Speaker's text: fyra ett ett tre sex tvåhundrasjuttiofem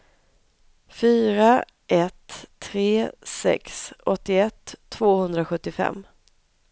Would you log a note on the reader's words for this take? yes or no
yes